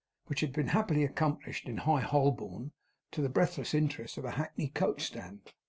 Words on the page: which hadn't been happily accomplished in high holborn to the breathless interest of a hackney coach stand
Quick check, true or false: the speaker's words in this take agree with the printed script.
false